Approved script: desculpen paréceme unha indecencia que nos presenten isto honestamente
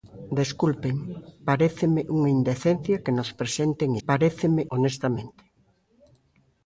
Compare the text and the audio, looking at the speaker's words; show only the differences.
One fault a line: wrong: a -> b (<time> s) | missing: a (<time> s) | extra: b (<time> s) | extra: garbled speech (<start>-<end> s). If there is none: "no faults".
wrong: isto -> paréceme (4.1 s)